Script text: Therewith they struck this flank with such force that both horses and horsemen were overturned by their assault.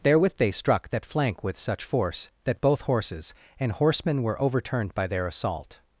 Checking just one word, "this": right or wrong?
wrong